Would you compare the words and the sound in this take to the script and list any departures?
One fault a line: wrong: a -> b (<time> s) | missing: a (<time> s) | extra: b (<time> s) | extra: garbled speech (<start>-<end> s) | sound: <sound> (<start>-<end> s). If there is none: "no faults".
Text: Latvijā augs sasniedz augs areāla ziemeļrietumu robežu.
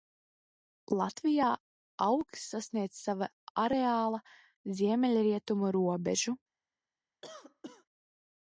wrong: augs -> sava (3.0 s)
sound: cough (7.2-7.9 s)